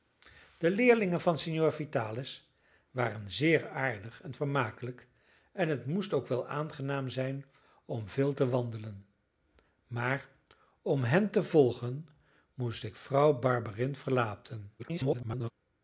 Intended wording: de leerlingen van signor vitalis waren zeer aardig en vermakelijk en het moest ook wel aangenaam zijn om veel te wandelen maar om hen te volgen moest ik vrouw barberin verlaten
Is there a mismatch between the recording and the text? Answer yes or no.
yes